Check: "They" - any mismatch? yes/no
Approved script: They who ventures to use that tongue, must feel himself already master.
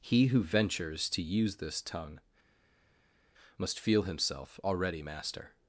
yes